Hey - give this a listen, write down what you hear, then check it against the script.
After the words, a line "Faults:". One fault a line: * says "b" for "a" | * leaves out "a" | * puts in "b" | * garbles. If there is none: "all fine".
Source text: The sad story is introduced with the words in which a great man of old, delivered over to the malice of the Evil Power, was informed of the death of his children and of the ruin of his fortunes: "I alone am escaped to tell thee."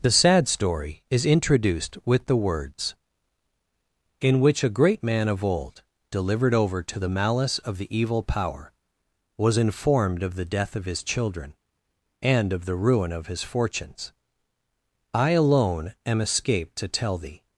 The sad story is introduced with the words in which a great man of old, delivered over to the malice of the Evil Power, was informed of the death of his children and of the ruin of his fortunes: "I alone am escaped to tell thee."
Faults:
all fine